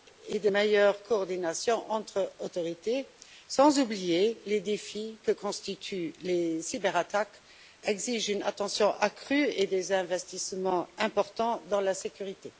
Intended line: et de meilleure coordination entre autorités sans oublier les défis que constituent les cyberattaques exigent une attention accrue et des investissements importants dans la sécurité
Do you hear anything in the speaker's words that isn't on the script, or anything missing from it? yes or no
no